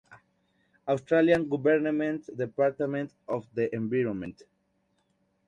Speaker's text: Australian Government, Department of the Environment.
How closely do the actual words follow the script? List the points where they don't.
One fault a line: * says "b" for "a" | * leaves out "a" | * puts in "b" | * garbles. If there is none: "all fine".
all fine